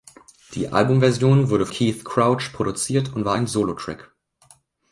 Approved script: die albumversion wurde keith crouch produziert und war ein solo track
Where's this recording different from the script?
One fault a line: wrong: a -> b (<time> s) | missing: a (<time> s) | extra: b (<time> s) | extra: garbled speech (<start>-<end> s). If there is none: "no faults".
no faults